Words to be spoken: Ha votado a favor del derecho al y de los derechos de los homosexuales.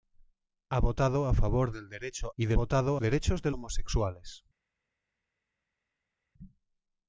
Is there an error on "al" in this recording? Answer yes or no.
yes